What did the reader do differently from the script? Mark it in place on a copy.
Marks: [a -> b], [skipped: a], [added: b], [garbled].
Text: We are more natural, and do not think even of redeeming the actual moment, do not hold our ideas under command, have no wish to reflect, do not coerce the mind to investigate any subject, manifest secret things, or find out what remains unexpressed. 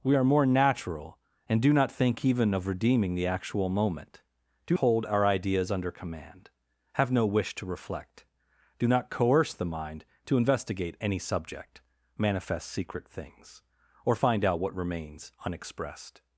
We are more natural, and do not think even of redeeming the actual moment, do [skipped: not] hold our ideas under command, have no wish to reflect, do not coerce the mind to investigate any subject, manifest secret things, or find out what remains unexpressed.